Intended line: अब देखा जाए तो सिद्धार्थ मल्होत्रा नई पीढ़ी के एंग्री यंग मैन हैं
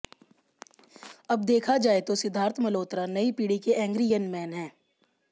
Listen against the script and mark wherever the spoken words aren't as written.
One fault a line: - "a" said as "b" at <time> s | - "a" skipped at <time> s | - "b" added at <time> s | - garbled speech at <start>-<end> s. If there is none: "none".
none